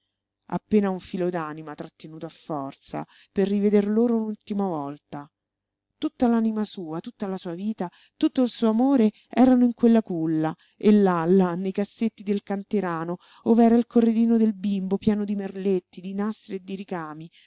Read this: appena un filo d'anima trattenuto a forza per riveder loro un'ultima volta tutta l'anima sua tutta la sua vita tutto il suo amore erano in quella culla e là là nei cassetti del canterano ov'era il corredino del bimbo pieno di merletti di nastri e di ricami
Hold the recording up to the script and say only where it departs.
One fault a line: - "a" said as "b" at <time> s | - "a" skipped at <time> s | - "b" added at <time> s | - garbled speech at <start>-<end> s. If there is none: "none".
none